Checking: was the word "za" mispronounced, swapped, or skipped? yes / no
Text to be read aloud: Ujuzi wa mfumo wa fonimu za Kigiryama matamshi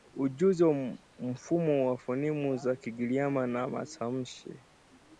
no